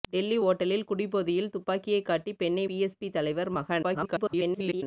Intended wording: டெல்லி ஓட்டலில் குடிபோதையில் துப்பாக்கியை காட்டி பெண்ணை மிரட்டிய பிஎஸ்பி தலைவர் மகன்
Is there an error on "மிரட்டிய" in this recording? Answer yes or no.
yes